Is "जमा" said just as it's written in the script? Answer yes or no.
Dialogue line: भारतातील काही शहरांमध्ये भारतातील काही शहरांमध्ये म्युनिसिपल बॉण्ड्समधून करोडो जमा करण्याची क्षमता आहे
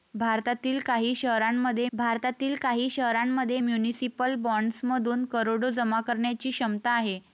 yes